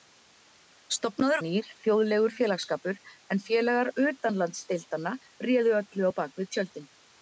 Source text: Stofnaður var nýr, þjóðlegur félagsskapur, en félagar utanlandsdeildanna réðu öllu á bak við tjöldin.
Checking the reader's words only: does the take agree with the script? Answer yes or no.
no